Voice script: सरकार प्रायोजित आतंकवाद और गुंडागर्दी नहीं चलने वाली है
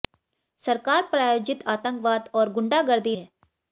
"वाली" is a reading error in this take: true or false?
true